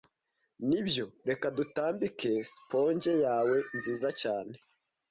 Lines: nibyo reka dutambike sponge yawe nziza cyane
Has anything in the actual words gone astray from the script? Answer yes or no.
no